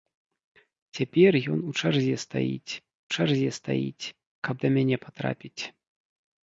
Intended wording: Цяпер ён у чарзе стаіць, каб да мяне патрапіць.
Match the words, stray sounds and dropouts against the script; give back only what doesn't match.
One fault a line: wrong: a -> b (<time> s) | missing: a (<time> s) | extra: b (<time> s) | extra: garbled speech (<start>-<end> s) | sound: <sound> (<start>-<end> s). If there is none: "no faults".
extra: чарзе стаіць (3.1 s)